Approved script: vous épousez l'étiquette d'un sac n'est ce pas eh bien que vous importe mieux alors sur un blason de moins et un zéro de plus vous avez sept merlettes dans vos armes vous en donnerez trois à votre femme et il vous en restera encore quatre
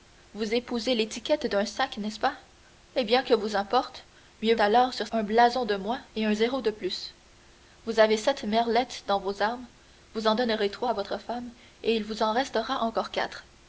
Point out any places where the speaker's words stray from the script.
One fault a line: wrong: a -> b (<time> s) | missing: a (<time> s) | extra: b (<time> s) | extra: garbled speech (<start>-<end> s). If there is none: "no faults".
no faults